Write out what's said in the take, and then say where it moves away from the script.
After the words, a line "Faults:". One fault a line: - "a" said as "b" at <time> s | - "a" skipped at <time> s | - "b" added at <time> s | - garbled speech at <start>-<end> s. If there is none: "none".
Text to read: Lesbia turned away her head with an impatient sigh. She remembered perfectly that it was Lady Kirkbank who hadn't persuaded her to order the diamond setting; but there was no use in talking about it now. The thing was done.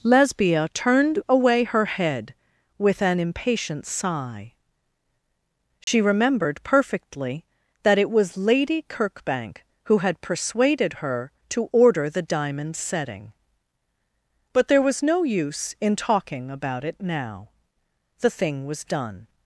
Lesbia turned away her head with an impatient sigh. She remembered perfectly that it was Lady Kirkbank who had persuaded her to order the diamond setting; but there was no use in talking about it now. The thing was done.
Faults:
- "hadn't" said as "had" at 10.0 s